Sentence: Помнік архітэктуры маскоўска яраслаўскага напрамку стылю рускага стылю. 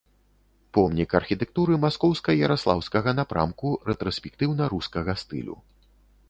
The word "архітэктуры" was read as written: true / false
true